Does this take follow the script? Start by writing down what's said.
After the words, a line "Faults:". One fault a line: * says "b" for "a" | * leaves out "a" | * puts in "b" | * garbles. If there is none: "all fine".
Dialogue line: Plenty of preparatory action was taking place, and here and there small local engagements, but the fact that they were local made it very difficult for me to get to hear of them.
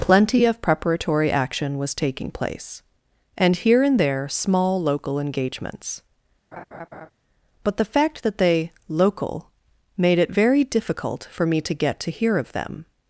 Plenty of preparatory action was taking place, and here and there small local engagements, but the fact that they local made it very difficult for me to get to hear of them.
Faults:
* leaves out "were"